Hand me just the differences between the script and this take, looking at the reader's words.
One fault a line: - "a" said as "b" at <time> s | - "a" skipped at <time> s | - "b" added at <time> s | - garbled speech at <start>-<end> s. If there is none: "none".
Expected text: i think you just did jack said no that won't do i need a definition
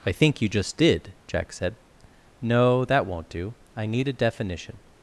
none